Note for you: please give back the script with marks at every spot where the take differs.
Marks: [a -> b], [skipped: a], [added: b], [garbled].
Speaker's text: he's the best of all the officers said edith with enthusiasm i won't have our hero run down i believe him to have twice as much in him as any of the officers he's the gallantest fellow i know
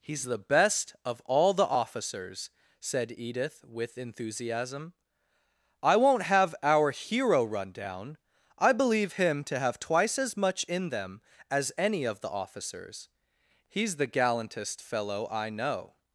he's the best of all the officers said edith with enthusiasm i won't have our hero run down i believe him to have twice as much in [him -> them] as any of the officers he's the gallantest fellow i know